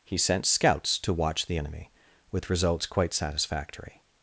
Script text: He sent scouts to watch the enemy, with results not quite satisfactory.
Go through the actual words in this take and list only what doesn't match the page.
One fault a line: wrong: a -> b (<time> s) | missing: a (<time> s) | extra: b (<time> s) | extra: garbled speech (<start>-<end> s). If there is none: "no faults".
missing: not (2.9 s)